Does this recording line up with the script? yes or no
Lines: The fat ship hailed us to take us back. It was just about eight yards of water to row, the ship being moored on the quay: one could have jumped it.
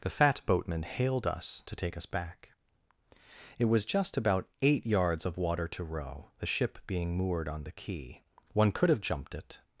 no